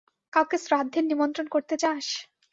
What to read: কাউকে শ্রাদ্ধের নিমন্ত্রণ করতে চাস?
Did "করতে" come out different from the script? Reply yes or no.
no